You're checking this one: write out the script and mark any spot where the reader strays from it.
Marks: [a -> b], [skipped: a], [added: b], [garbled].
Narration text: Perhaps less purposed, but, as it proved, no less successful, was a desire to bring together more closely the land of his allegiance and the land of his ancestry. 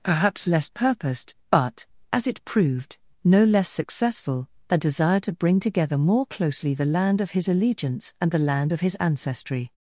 Perhaps less purposed, but, as it proved, no less successful, [skipped: was] a desire to bring together more closely the land of his allegiance and the land of his ancestry.